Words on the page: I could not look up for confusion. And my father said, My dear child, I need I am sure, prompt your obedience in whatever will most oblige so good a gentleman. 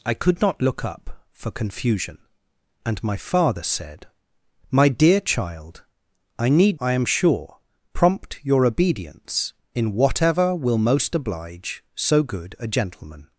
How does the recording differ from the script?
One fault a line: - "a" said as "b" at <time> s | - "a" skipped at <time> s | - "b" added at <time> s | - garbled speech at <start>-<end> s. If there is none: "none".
none